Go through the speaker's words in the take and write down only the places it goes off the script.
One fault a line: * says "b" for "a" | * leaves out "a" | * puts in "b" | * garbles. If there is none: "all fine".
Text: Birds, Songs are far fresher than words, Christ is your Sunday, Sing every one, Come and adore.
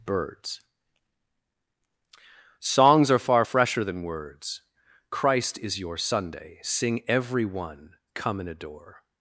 all fine